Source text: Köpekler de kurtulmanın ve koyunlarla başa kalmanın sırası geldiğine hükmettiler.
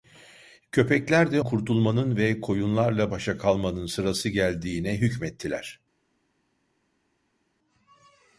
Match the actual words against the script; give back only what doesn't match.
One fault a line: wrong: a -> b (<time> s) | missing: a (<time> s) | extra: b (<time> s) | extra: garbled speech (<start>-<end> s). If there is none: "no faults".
no faults